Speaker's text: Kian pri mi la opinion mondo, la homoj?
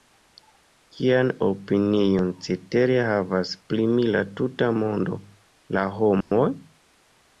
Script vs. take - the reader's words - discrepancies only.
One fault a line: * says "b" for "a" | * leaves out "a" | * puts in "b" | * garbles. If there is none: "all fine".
* puts in "opinion cetere havas"
* says "tuta" for "opinion"